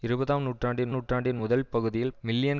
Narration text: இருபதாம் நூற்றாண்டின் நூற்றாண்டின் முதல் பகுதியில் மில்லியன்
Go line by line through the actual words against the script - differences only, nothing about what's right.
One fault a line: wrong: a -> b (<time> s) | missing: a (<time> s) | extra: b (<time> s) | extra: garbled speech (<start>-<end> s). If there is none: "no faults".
no faults